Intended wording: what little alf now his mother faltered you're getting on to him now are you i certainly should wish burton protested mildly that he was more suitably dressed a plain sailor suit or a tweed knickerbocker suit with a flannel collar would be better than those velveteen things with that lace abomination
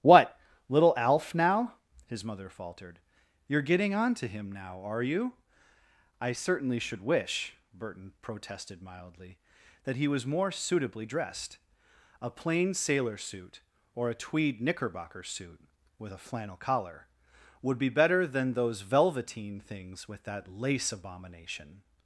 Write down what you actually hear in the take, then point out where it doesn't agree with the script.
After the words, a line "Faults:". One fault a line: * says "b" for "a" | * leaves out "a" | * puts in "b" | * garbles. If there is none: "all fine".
what little alf now his mother faltered you're getting on to him now are you i certainly should wish burton protested mildly that he was more suitably dressed a plain sailor suit or a tweed knickerbocker suit with a flannel collar would be better than those velveteen things with that lace abomination
Faults:
all fine